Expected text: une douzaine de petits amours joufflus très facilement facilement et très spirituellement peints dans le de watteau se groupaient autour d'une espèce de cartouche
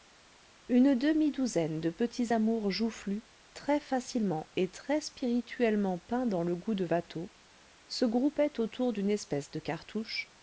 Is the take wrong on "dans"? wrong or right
right